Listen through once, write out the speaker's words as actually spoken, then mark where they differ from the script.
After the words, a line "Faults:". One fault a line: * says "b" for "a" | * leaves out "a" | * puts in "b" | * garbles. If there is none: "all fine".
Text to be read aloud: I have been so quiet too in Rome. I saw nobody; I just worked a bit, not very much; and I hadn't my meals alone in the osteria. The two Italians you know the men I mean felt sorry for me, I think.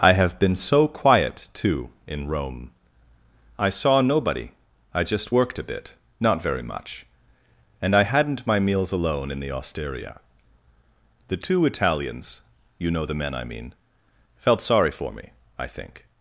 I have been so quiet too in Rome. I saw nobody; I just worked a bit, not very much; and I hadn't my meals alone in the osteria. The two Italians you know the men I mean felt sorry for me, I think.
Faults:
all fine